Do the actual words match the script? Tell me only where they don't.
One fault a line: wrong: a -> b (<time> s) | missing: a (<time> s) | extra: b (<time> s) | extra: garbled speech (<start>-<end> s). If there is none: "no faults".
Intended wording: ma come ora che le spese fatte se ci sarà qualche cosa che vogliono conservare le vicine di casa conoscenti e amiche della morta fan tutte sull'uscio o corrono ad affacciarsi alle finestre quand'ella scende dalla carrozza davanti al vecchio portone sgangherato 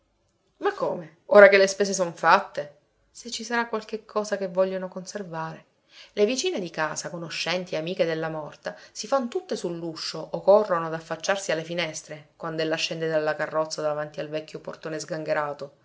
extra: son (1.9 s)
extra: si (8.9 s)